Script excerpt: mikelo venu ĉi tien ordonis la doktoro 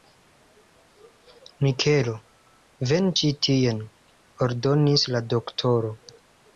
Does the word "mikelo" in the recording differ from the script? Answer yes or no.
no